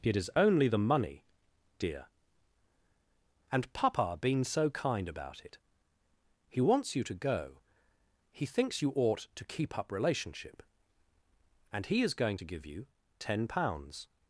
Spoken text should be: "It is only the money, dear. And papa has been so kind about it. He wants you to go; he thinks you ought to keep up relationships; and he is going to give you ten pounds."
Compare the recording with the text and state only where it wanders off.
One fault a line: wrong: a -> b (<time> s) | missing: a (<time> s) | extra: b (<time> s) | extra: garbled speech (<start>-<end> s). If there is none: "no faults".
missing: has (4.2 s)
wrong: relationships -> relationship (9.9 s)